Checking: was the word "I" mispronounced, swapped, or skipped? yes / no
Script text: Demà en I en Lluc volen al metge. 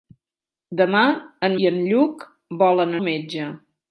no